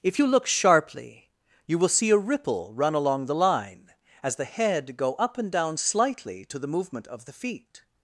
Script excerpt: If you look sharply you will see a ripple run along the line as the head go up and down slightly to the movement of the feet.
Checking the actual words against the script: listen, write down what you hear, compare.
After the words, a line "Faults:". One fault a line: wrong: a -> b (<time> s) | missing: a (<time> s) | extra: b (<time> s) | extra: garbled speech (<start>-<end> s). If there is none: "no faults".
If you look sharply you will see a ripple run along the line as the head go up and down slightly to the movement of the feet.
Faults:
no faults